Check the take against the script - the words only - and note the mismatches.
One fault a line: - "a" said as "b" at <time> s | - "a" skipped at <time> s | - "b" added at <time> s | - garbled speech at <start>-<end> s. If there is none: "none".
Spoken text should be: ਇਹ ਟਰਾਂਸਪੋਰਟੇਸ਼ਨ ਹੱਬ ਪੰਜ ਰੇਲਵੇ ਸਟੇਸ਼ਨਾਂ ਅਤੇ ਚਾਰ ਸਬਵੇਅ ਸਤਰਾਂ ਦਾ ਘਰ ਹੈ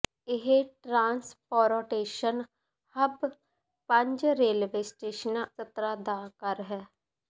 - "ਅਤੇ ਚਾਰ ਸਬਵੇਅ" skipped at 5.5 s